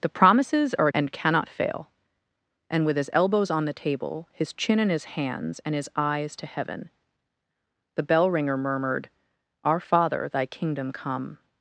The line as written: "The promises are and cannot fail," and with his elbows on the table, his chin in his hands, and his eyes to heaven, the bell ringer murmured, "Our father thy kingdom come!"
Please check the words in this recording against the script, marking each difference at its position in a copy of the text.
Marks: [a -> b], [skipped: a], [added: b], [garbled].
"The promises are and cannot fail," and with his elbows on the table, his chin in his hands, and his eyes to heaven, the bell ringer murmured, "Our father thy kingdom come!"